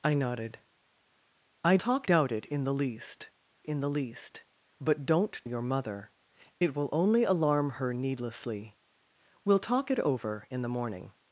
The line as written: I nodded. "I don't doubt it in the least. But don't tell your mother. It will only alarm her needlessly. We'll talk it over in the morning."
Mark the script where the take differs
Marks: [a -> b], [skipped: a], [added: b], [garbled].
I nodded. "I [don't -> talk] doubt it in the least. [added: in the least] But don't [skipped: tell] your mother. It will only alarm her needlessly. We'll talk it over in the morning."